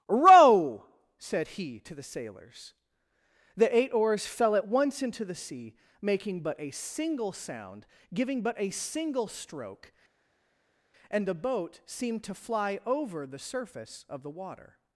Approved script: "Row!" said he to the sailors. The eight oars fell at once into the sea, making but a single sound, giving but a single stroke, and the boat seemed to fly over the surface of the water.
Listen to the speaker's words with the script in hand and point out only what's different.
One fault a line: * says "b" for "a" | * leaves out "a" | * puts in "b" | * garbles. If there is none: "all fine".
all fine